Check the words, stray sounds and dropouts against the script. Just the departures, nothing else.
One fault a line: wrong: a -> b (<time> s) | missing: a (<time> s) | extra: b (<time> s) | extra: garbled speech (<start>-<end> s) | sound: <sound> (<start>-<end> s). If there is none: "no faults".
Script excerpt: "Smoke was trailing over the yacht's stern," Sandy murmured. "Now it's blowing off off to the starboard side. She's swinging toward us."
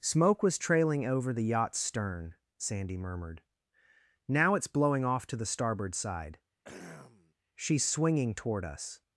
missing: off (5.3 s)
sound: throat clearing (6.6-7.3 s)